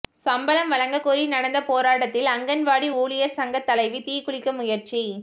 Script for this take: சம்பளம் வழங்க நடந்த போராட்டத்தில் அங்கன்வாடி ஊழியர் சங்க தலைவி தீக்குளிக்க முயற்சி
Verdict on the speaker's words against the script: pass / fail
fail